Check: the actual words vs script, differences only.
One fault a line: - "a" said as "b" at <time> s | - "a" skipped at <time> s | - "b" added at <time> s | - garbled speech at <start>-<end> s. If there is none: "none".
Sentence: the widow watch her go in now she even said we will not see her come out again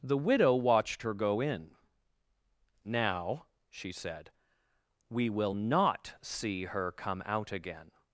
- "watch" said as "watched" at 0.6 s
- "even" skipped at 3.9 s